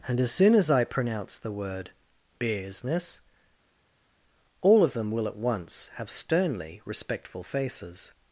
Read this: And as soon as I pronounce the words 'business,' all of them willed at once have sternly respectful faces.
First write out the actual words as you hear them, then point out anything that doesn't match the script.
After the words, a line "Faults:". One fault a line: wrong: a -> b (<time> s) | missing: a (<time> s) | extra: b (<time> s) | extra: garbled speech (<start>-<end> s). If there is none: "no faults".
And as soon as I pronounce the word 'business,' all of them will at once have sternly respectful faces.
Faults:
wrong: words -> word (1.5 s)
wrong: willed -> will (5.1 s)